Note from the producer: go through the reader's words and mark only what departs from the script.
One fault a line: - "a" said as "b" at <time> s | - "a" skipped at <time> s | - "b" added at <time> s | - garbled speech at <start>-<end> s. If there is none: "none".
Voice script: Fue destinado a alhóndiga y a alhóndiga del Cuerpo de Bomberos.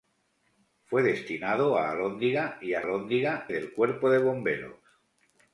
none